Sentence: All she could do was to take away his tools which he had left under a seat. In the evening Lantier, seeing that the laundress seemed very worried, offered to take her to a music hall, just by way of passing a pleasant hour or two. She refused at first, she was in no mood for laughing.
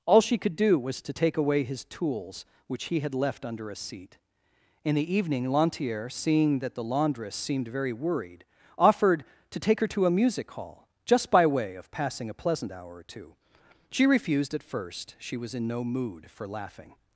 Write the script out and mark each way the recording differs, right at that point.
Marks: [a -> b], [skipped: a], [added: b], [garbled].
All she could do was to take away his tools which he had left under a seat. In the evening Lantier, seeing that the laundress seemed very worried, offered to take her to a music hall, just by way of passing a pleasant hour or two. She refused at first, she was in no mood for laughing.